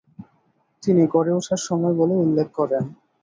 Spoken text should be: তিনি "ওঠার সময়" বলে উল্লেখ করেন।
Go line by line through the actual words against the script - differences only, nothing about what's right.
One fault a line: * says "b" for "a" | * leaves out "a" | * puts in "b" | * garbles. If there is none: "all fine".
* puts in "গড়ে"